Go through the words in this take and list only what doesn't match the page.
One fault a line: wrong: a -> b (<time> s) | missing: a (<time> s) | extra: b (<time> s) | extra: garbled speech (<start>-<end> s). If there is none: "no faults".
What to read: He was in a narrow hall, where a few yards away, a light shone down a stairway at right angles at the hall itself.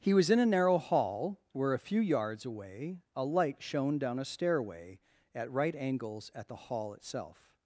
no faults